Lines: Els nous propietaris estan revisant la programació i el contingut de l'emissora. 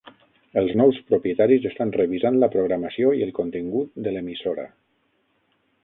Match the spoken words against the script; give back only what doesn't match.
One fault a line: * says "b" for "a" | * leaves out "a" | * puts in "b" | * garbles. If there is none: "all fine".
all fine